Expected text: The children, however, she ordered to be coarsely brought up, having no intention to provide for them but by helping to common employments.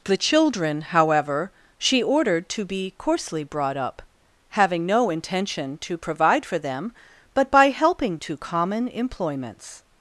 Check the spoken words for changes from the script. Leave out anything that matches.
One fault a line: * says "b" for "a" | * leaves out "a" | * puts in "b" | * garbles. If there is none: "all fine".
all fine